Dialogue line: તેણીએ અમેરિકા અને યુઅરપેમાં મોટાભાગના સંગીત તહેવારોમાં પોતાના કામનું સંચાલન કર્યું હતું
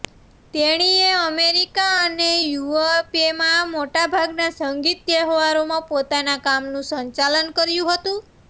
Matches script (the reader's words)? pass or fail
pass